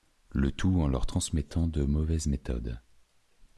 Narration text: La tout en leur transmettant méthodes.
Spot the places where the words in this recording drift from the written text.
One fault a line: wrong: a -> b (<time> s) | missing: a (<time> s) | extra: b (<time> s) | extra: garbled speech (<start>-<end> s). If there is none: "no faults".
wrong: La -> Le (0.3 s)
extra: de mauvaises (1.7 s)